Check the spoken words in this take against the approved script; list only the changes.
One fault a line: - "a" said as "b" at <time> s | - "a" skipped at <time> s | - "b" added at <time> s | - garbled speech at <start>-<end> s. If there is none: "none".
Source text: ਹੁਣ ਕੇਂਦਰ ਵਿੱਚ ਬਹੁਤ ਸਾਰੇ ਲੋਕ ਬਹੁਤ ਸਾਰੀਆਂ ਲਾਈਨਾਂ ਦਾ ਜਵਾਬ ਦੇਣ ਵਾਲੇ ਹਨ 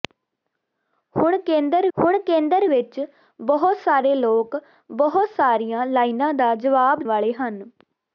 - "ਹੁਣ ਕੇਂਦਰ" added at 2.0 s
- "ਦੇਣ" skipped at 7.0 s